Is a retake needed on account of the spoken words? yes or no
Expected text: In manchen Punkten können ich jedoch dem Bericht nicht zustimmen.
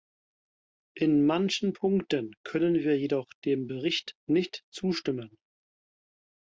yes